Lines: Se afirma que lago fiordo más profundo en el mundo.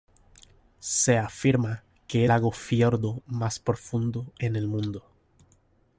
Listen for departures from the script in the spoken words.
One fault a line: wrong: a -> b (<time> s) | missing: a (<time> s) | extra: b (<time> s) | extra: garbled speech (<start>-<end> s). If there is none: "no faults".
no faults